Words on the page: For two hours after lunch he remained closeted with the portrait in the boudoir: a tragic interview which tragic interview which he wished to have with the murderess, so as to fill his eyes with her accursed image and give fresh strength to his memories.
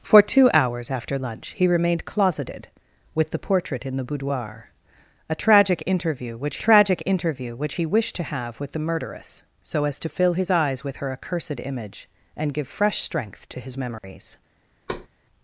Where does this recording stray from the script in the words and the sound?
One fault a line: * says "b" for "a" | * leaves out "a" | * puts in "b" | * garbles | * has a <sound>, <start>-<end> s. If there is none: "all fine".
* has a dropout, 14.0-14.0 s
* has a thud, 14.9-15.1 s